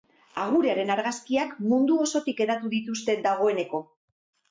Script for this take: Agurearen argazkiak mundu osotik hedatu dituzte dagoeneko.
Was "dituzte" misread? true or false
false